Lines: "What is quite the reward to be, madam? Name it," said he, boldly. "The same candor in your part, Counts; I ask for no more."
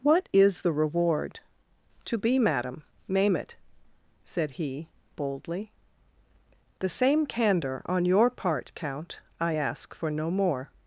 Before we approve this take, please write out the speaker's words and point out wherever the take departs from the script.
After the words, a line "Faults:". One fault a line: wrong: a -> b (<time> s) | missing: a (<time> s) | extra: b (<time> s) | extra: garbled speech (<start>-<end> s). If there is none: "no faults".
"What is the reward to be, madam? Name it," said he, boldly. "The same candor on your part, Count; I ask for no more."
Faults:
missing: quite (0.6 s)
wrong: in -> on (7.9 s)
wrong: Counts -> Count (8.8 s)